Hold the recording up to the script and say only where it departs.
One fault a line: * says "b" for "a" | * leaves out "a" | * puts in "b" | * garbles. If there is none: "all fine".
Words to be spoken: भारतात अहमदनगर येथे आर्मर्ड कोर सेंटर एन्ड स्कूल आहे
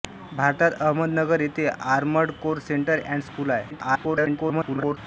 * garbles